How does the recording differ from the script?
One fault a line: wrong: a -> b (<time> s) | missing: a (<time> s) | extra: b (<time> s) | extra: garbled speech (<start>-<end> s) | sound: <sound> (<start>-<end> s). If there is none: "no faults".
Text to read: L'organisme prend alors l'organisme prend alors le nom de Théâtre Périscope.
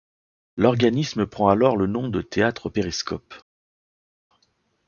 missing: l'organisme prend alors (1.8 s)